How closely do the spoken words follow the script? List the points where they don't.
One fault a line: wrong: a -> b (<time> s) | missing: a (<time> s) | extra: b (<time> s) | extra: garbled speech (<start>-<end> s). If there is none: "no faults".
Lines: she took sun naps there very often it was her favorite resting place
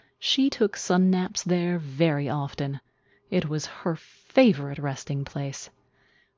no faults